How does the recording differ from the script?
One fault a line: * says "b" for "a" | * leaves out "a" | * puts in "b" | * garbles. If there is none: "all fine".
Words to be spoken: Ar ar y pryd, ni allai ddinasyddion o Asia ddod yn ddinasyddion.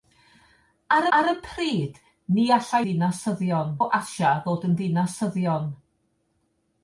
all fine